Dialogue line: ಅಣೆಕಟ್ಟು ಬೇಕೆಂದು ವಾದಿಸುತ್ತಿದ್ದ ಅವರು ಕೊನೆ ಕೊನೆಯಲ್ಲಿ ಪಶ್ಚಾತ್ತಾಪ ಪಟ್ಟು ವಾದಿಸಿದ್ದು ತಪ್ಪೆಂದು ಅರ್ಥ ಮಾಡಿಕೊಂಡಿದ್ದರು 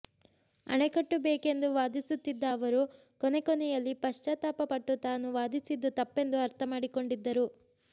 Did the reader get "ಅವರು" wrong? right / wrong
right